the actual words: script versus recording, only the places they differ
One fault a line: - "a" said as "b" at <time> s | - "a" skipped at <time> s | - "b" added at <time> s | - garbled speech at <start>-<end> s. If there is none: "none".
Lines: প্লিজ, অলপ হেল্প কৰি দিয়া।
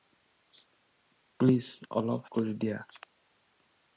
- "হেল্প" skipped at 2.2 s